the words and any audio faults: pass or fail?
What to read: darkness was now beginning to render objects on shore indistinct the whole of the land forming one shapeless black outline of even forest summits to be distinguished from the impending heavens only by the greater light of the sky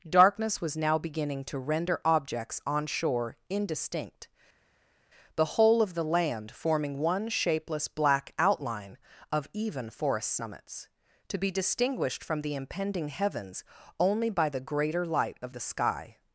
pass